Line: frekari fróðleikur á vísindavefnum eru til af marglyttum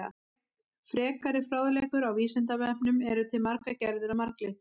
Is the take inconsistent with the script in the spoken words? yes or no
yes